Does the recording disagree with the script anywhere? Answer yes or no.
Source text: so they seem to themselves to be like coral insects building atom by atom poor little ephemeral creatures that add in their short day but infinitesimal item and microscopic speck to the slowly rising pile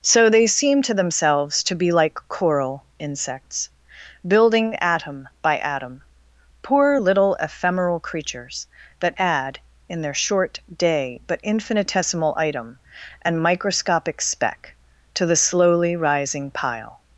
no